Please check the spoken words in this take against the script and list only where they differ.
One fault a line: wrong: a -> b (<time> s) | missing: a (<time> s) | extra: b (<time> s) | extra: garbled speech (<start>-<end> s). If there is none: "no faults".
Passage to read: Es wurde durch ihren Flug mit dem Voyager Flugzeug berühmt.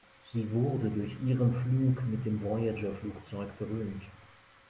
wrong: Es -> Sie (0.3 s)